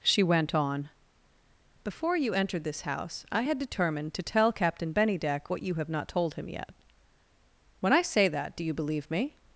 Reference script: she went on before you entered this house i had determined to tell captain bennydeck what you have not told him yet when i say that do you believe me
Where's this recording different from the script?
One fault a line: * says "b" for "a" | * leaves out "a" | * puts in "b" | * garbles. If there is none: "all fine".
all fine